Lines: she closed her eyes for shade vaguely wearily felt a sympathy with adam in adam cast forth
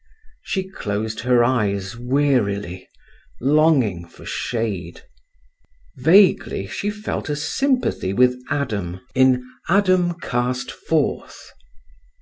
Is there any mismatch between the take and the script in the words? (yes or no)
yes